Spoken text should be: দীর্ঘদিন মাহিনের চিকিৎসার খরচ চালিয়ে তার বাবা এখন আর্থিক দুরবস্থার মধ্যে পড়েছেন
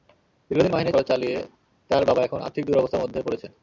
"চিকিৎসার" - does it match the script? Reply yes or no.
no